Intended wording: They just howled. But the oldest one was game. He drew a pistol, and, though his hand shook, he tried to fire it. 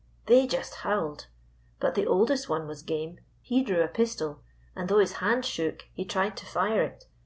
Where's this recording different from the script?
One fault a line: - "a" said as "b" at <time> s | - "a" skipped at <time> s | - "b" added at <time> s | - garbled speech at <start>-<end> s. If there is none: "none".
none